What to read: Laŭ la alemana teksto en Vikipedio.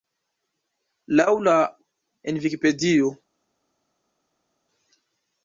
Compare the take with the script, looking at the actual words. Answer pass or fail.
fail